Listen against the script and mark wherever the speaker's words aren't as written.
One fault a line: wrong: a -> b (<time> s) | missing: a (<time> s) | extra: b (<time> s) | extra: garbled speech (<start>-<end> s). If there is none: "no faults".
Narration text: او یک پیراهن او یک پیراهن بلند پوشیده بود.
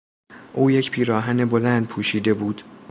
missing: او یک پیراهن (1.4 s)